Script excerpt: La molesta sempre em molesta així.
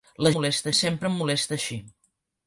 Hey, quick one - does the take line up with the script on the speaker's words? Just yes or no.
yes